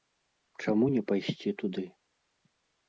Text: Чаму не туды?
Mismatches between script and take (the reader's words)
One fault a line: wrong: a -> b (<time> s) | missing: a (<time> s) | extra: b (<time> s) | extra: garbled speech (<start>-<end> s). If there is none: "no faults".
extra: пайсці (1.1 s)